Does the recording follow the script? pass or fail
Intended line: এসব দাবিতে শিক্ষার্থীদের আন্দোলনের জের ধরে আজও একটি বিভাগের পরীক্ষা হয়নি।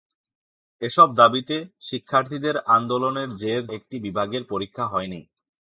fail